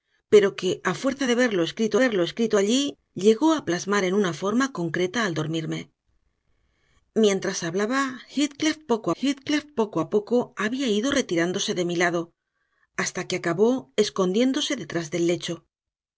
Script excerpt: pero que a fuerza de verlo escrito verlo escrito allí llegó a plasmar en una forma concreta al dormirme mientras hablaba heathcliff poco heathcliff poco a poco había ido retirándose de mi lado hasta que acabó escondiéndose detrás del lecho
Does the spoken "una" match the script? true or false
true